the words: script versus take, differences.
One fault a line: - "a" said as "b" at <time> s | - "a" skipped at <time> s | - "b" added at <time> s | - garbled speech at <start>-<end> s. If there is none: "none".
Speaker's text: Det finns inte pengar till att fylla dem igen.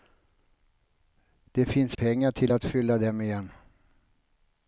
- "inte" skipped at 2.0 s